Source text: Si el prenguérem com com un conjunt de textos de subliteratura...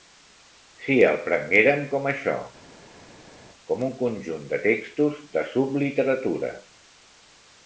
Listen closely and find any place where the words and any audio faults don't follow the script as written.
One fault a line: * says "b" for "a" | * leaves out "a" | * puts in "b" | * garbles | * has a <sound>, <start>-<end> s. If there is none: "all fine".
* puts in "això"